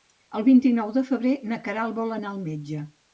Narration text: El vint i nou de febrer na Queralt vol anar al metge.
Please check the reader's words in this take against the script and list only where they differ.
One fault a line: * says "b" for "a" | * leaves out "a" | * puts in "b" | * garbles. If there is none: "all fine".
all fine